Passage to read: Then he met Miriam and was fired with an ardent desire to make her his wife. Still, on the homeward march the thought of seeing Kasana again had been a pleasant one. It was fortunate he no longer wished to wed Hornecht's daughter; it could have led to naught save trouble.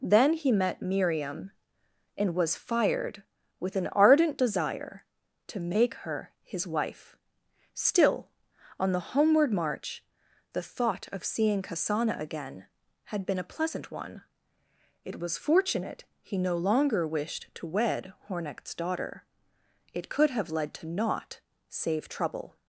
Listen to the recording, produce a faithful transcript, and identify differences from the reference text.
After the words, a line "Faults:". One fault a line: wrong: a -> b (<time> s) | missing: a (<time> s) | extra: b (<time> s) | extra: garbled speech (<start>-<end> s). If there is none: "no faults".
Then he met Miriam and was fired with an ardent desire to make her his wife. Still, on the homeward march the thought of seeing Kasana again had been a pleasant one. It was fortunate he no longer wished to wed Hornecht's daughter; it could have led to naught save trouble.
Faults:
no faults